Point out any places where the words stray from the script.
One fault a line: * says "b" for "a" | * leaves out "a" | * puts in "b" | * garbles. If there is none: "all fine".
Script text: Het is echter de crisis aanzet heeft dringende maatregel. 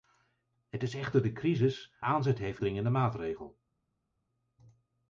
all fine